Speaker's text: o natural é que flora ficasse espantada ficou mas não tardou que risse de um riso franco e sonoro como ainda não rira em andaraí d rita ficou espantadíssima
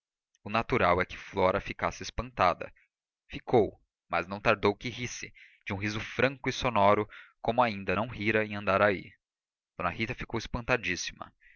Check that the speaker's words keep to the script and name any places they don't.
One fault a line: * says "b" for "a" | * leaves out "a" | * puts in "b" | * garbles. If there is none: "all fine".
all fine